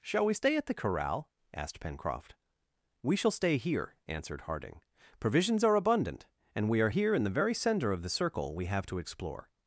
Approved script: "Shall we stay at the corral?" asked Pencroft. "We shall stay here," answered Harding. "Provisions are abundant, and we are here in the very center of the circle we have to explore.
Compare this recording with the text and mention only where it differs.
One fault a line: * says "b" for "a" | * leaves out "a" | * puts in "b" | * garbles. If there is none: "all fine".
all fine